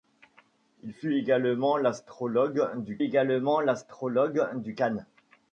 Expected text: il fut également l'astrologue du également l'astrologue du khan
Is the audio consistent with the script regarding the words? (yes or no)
yes